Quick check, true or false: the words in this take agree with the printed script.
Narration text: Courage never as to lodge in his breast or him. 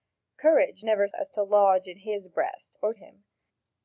true